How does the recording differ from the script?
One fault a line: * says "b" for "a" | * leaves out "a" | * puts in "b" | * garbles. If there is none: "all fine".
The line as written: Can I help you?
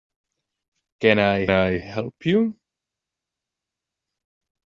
* puts in "I"